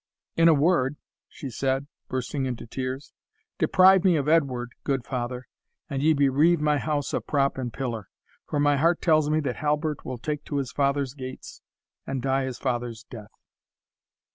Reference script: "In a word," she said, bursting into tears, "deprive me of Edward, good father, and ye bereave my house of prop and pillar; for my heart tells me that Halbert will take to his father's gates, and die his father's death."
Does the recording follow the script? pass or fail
pass